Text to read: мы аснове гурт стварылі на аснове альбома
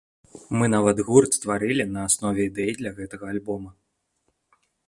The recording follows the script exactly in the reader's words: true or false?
false